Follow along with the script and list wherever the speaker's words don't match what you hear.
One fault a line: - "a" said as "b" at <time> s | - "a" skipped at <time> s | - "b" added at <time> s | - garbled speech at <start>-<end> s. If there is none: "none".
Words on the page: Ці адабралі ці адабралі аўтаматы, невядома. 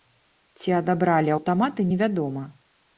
- "ці адабралі" skipped at 1.4 s